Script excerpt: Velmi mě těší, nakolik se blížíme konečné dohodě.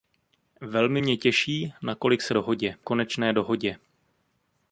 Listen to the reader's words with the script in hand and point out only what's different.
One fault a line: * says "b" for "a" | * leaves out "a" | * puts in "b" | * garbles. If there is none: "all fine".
* says "dohodě" for "blížíme"